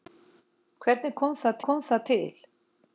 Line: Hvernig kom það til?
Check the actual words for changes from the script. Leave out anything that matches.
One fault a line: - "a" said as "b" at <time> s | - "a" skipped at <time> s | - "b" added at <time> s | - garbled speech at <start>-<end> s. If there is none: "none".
- "kom það" added at 1.7 s